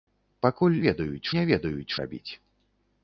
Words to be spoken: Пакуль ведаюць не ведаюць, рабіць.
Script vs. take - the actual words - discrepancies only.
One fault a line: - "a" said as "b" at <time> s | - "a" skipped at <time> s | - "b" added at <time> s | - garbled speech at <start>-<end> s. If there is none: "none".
none